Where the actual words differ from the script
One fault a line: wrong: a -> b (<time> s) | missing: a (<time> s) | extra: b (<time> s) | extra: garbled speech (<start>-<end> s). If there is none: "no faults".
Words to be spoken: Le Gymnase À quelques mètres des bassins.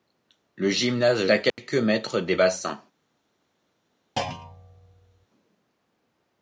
no faults